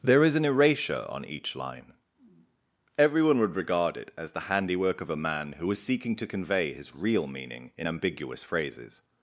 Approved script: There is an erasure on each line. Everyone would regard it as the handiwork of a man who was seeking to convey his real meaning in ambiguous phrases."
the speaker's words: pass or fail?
pass